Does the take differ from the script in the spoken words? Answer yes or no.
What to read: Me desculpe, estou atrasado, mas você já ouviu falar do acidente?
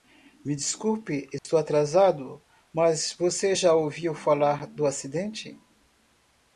no